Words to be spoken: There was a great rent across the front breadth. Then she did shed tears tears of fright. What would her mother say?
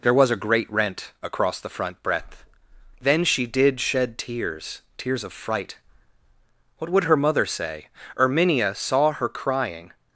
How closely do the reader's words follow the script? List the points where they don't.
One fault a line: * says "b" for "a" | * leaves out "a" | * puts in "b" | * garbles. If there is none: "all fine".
* puts in "Erminia saw her crying"